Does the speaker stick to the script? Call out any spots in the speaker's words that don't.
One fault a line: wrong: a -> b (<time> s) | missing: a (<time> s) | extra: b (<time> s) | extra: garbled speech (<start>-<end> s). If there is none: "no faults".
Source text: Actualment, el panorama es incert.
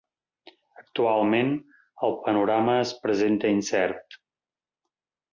extra: presenta (3.0 s)